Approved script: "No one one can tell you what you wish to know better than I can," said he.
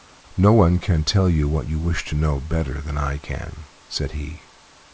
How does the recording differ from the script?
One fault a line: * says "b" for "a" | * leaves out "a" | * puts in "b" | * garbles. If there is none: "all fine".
* leaves out "one"